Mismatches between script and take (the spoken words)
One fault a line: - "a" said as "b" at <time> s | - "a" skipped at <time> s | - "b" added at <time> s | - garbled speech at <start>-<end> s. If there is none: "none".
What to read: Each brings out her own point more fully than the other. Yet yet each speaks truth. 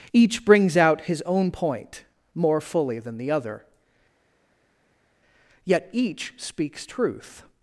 - "her" said as "his" at 1.0 s
- "yet" skipped at 5.9 s